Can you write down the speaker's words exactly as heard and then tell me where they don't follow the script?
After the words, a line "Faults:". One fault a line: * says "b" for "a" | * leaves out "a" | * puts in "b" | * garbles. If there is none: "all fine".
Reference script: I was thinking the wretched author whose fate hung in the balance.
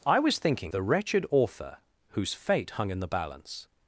I was thinking the wretched author whose fate hung in the balance.
Faults:
all fine